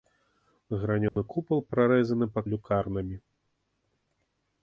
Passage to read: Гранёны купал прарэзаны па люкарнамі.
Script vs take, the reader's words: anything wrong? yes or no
no